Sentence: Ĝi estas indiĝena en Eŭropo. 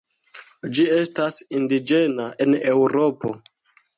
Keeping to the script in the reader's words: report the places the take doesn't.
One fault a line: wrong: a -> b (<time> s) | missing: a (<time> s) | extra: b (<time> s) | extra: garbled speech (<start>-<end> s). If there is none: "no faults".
no faults